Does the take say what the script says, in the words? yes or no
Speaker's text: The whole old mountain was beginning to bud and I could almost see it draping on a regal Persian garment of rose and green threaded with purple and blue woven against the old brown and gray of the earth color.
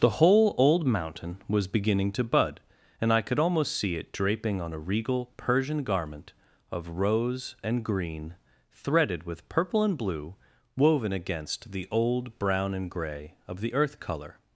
yes